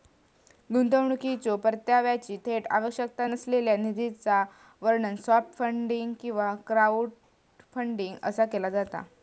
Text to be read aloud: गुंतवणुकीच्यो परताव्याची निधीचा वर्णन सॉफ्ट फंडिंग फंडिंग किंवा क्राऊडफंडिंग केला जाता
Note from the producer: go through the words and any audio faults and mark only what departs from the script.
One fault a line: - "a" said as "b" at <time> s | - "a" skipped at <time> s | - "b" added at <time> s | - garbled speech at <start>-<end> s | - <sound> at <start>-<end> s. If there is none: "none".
- "थेट आवश्यकता नसलेल्या" added at 2.4 s
- "फंडिंग" skipped at 6.1 s
- "असा" added at 8.2 s